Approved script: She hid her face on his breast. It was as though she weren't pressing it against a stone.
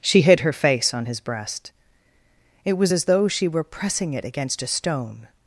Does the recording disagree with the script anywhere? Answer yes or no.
yes